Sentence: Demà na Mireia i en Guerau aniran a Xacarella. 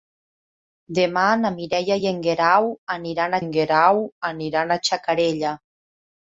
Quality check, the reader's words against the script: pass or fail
fail